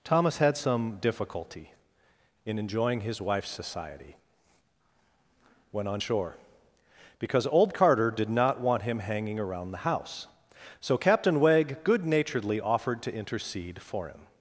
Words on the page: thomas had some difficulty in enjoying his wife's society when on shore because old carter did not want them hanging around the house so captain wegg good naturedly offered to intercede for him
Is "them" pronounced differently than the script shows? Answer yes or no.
yes